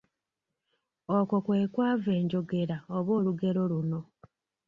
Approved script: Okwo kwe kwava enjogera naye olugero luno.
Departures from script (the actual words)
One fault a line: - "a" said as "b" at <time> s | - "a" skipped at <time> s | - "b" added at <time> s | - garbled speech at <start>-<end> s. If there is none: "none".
- "naye" said as "oba" at 3.0 s